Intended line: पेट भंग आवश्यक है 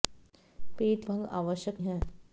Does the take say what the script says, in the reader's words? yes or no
yes